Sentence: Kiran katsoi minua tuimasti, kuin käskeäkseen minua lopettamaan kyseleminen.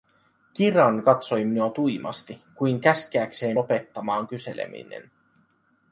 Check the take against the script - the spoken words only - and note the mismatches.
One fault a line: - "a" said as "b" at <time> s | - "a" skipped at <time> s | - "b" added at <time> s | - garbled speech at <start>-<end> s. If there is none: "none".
- "minua" skipped at 3.6 s